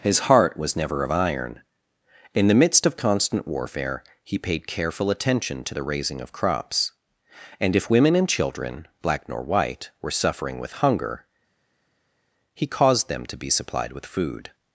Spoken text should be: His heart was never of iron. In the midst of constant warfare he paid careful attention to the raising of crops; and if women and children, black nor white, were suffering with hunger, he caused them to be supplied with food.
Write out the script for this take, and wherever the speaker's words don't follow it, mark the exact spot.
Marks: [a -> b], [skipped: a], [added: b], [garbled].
His heart was never of iron. In the midst of constant warfare he paid careful attention to the raising of crops; and if women and children, black nor white, were suffering with hunger, he caused them to be supplied with food.